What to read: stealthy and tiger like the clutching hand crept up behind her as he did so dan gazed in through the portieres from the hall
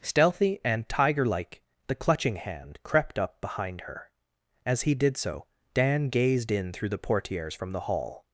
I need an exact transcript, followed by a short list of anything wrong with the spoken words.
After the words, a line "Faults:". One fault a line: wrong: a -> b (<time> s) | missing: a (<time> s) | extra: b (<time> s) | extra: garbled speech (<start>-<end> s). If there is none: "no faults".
stealthy and tiger like the clutching hand crept up behind her as he did so dan gazed in through the portieres from the hall
Faults:
no faults